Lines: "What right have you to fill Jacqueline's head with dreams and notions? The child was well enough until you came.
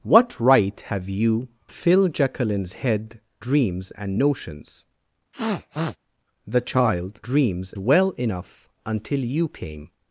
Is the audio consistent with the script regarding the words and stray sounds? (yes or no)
no